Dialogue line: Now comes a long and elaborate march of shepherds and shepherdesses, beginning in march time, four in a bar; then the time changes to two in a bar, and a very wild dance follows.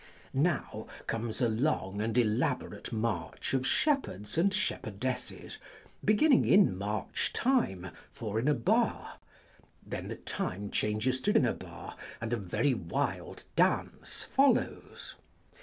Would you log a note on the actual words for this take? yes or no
yes